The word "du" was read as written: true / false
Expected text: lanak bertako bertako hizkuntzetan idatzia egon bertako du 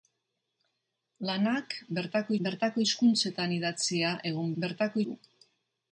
true